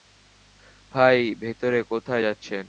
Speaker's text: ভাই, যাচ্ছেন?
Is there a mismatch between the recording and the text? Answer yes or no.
yes